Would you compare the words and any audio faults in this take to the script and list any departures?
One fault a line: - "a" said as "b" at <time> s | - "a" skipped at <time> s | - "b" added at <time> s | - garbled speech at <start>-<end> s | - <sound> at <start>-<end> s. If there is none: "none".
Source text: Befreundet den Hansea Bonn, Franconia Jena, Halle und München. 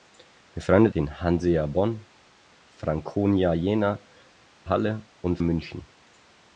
none